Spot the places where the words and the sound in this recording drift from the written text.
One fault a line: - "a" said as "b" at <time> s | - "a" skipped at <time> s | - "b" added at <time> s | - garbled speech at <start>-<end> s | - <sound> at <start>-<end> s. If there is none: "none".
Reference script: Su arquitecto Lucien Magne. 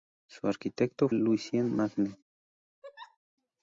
- laugh at 2.8-3.2 s